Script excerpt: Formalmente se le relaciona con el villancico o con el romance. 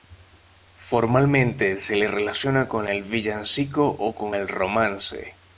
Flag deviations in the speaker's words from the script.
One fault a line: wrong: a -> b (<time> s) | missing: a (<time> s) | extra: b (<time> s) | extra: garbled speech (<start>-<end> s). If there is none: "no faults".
no faults